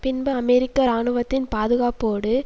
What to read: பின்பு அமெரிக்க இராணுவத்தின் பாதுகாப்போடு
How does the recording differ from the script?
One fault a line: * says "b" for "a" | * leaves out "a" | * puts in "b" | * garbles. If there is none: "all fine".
all fine